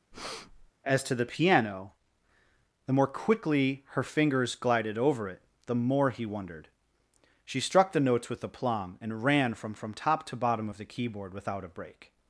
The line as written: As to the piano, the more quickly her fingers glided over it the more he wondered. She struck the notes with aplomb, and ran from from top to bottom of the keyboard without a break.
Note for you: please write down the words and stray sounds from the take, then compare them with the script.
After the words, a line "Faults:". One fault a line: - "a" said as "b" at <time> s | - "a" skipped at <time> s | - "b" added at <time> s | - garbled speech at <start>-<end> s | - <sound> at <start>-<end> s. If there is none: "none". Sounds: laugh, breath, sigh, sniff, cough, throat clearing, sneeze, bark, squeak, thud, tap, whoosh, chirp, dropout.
As to the piano, the more quickly her fingers glided over it the more he wondered. She struck the notes with aplomb, and ran from from top to bottom of the keyboard without a break.
Faults:
- breath at 0.1-0.7 s